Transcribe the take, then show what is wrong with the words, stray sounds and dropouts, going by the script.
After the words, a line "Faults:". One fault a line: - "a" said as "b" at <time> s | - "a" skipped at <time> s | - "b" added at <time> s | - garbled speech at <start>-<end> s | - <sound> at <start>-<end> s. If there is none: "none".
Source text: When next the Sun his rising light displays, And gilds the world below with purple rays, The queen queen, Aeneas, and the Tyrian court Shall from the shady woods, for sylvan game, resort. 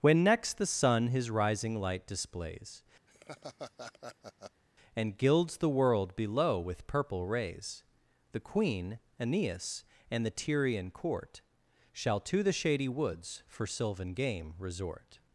When next the Sun his rising light displays, And gilds the world below with purple rays, The queen, Aeneas, and the Tyrian court Shall to the shady woods, for sylvan game, resort.
Faults:
- laugh at 3.1-4.6 s
- "queen" skipped at 9.0 s
- "from" said as "to" at 12.2 s